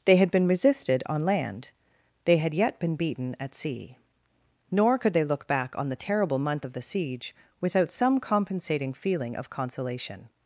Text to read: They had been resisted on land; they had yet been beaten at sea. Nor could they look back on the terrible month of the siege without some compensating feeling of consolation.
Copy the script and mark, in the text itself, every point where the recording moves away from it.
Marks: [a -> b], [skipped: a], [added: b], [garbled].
They had been resisted on land; they had yet been beaten at sea. Nor could they look back on the terrible month of the siege without some compensating feeling of consolation.